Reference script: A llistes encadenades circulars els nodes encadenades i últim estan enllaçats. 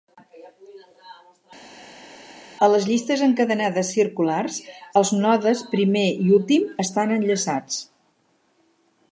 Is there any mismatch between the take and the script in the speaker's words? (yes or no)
yes